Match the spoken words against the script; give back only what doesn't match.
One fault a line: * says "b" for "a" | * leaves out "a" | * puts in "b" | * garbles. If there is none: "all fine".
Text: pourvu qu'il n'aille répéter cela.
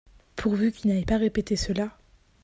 * puts in "pas"